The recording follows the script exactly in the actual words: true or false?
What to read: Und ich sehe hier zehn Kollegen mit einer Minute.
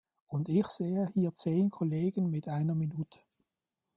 true